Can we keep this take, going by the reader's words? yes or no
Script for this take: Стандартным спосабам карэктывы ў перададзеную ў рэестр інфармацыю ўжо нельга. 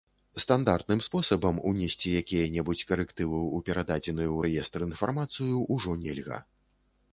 no